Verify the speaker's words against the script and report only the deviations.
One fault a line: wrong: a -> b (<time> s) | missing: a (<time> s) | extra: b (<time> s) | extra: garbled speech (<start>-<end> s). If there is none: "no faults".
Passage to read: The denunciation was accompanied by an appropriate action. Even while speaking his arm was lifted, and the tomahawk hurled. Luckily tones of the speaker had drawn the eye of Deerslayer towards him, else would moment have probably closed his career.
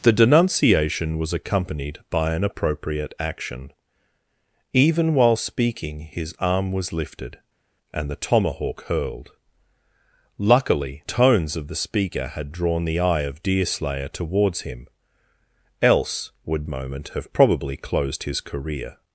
no faults